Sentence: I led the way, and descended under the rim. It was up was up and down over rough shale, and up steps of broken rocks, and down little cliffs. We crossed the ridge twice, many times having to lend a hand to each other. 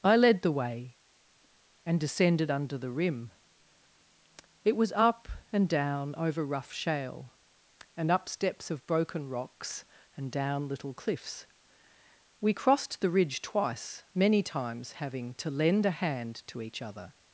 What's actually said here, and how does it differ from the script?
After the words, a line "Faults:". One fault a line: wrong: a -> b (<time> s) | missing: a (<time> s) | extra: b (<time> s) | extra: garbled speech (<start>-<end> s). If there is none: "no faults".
I led the way, and descended under the rim. It was up and down over rough shale, and up steps of broken rocks, and down little cliffs. We crossed the ridge twice, many times having to lend a hand to each other.
Faults:
missing: was up (5.3 s)